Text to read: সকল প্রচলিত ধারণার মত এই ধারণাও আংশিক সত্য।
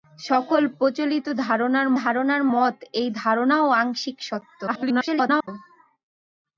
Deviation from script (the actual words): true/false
true